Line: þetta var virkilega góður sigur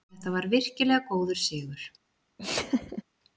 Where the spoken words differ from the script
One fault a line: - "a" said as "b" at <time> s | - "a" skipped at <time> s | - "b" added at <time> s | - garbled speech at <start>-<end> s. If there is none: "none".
none